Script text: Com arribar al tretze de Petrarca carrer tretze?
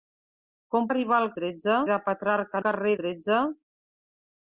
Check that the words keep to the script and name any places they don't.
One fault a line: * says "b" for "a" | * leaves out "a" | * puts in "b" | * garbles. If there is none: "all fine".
all fine